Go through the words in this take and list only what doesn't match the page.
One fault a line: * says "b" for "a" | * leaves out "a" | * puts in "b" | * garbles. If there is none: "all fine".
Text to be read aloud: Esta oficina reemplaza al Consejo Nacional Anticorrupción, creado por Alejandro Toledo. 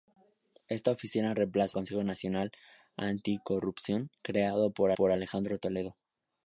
* leaves out "al"
* puts in "por"